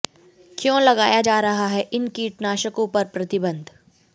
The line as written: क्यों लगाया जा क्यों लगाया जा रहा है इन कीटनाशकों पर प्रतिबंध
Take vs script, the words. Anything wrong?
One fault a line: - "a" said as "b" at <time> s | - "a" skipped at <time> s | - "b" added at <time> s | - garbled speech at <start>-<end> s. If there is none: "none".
- "क्यों लगाया जा" skipped at 1.4 s